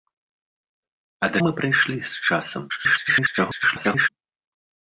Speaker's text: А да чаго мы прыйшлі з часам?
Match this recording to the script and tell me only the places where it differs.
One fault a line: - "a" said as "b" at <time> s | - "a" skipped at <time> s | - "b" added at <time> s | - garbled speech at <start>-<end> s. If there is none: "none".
- "чаго" skipped at 1.4 s
- garbled speech at 2.7-4.1 s